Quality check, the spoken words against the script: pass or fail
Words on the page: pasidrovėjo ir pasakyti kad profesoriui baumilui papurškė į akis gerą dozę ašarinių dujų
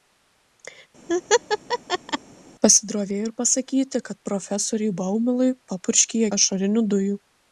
fail